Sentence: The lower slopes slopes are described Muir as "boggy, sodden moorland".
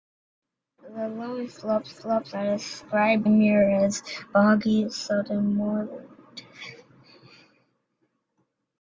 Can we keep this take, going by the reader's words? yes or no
yes